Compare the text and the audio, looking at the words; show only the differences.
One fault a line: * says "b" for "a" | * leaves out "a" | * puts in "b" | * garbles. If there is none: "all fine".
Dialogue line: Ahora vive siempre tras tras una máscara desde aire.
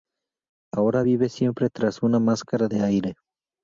* leaves out "tras"
* says "de" for "desde"